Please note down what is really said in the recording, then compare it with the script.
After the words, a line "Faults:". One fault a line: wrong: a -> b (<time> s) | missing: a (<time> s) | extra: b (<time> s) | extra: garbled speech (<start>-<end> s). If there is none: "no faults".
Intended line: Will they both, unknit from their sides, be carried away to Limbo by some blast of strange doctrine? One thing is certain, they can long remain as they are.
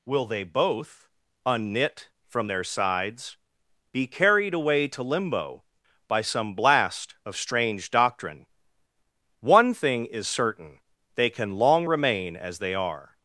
Will they both, unknit from their sides, be carried away to Limbo by some blast of strange doctrine? One thing is certain, they can long remain as they are.
Faults:
no faults